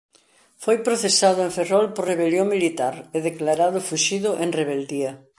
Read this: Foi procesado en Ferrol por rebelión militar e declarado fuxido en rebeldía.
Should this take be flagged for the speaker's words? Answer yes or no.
no